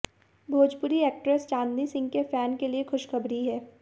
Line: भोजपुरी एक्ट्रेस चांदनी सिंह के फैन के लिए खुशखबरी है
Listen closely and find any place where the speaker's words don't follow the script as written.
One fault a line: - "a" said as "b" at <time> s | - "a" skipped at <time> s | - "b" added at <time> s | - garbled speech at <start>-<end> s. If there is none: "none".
none